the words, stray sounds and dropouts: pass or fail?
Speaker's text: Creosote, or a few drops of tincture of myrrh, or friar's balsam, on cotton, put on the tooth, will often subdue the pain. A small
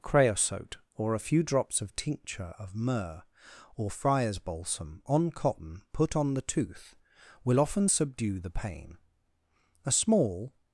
pass